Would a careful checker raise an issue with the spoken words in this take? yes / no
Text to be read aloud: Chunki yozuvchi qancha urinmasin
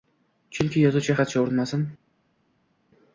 no